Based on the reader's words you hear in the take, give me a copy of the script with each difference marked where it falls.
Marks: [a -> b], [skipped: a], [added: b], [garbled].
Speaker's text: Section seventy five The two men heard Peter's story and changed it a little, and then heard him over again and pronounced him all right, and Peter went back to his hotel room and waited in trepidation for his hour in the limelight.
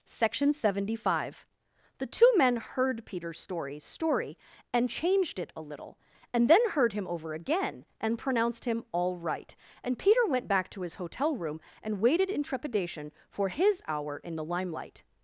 Section seventy five The two men heard Peter's story [added: story] and changed it a little, and then heard him over again and pronounced him all right, and Peter went back to his hotel room and waited in trepidation for his hour in the limelight.